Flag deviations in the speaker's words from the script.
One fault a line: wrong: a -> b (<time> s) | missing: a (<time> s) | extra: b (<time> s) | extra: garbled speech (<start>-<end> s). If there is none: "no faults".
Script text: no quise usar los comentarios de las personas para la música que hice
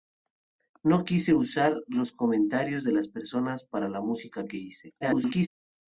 extra: garbled speech (5.0-5.5 s)